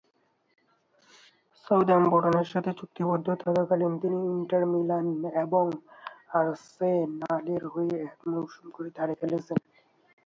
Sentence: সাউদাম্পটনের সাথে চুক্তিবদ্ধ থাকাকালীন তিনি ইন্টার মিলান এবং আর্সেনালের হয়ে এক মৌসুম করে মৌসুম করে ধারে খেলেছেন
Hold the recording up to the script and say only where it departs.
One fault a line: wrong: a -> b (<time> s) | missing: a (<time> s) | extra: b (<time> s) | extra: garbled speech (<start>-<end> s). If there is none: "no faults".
missing: মৌসুম করে (8.9 s)